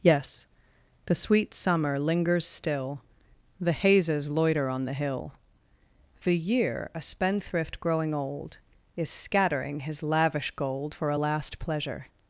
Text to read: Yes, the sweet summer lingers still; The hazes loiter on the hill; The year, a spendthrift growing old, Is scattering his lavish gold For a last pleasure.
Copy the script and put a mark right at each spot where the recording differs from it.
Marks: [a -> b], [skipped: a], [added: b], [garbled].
Yes, the sweet summer lingers still; The hazes loiter on the hill; The year, a spendthrift growing old, Is scattering his lavish gold For a last pleasure.